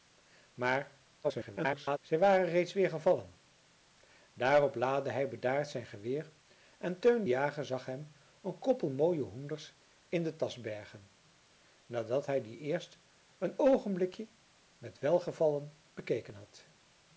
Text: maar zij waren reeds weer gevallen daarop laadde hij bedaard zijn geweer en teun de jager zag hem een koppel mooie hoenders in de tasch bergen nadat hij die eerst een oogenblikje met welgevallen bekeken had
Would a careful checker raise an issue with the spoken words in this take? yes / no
yes